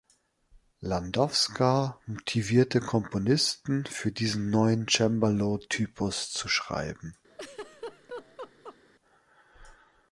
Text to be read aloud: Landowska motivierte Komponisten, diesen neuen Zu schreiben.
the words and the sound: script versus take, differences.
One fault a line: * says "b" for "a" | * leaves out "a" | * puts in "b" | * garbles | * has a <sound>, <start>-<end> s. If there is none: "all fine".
* puts in "für"
* puts in "Cembalo Typus"
* has a laugh, 7.3-8.8 s